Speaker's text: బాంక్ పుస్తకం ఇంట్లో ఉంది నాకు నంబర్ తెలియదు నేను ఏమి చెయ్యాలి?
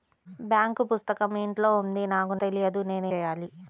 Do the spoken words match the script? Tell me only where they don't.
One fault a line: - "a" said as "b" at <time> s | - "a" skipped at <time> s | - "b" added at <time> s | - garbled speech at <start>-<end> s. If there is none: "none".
- "నంబర్" skipped at 2.4 s
- "ఏమి" skipped at 3.1 s